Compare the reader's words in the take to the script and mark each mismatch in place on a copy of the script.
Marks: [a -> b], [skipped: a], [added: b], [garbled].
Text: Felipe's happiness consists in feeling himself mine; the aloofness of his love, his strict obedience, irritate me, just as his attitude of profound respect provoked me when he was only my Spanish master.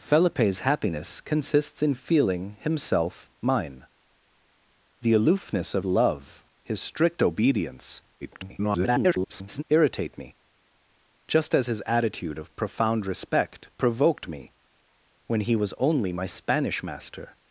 Felipe's happiness consists in feeling himself mine; the aloofness of [skipped: his] love, his strict obedience, [garbled] irritate me, just as his attitude of profound respect provoked me when he was only my Spanish master.